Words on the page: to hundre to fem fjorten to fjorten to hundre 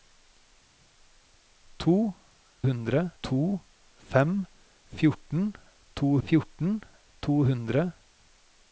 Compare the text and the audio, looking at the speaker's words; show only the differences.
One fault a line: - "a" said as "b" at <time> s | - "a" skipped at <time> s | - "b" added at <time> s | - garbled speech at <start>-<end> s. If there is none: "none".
none